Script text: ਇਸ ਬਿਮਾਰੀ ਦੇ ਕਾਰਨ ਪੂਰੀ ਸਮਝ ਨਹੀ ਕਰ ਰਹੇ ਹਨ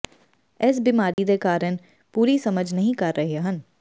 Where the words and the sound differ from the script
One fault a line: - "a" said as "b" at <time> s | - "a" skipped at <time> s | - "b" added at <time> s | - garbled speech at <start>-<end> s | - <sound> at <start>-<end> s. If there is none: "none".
- dropout at 1.1-1.2 s